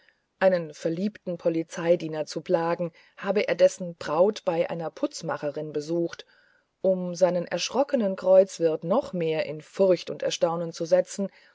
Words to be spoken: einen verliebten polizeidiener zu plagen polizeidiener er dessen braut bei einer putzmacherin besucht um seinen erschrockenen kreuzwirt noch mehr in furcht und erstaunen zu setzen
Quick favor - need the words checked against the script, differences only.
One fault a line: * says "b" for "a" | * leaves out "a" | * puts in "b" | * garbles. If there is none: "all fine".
* says "habe" for "polizeidiener"